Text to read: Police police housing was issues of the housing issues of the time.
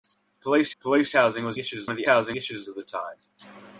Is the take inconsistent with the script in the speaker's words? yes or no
no